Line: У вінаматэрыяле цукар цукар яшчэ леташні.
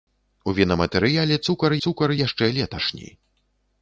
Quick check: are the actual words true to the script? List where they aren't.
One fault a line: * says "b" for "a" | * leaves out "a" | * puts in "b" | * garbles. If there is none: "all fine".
all fine